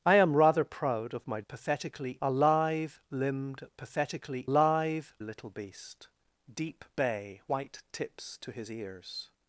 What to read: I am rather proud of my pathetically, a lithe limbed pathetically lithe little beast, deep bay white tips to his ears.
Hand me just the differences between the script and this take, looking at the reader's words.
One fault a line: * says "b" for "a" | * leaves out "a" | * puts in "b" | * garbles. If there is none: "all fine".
all fine